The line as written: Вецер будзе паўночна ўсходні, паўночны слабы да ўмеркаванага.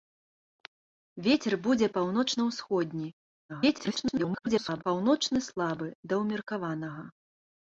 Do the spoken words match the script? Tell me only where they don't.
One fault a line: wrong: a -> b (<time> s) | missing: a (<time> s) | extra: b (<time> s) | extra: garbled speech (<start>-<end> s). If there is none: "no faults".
extra: garbled speech (3.5-4.8 s)